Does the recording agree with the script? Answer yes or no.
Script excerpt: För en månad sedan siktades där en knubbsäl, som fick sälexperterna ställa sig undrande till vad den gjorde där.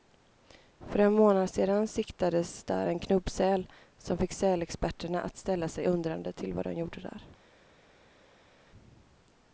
no